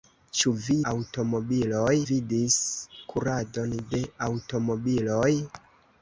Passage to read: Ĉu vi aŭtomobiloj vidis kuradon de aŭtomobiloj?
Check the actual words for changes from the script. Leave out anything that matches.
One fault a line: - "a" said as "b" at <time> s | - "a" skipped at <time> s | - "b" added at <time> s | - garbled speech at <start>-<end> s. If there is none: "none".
none